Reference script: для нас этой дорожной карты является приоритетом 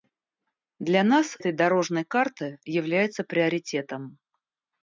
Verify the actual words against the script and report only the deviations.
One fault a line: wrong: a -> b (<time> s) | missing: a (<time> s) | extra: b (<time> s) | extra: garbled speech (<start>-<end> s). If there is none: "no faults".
no faults